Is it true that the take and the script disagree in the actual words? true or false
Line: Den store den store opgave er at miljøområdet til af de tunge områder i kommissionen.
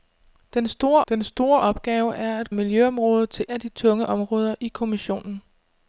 false